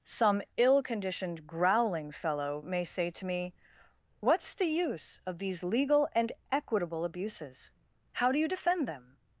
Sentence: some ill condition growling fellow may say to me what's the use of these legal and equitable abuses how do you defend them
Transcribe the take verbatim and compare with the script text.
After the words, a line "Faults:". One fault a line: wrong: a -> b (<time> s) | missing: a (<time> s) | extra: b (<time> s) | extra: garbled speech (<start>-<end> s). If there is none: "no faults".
some ill conditioned growling fellow may say to me what's the use of these legal and equitable abuses how do you defend them
Faults:
wrong: condition -> conditioned (0.8 s)